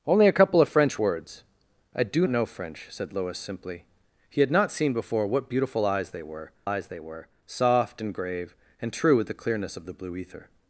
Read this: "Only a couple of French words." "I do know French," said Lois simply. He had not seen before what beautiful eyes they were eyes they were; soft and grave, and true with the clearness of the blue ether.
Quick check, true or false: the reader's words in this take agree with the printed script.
true